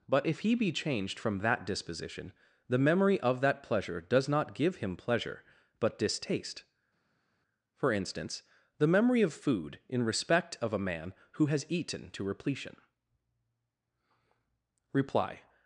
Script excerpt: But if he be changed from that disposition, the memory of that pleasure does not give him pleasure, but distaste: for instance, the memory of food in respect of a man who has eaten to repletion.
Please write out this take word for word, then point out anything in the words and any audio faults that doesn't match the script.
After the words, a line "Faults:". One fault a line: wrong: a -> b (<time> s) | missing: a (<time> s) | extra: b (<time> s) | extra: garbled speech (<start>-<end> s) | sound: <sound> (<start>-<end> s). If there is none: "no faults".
But if he be changed from that disposition, the memory of that pleasure does not give him pleasure, but distaste: for instance, the memory of food in respect of a man who has eaten to repletion. Reply
Faults:
extra: Reply (14.9 s)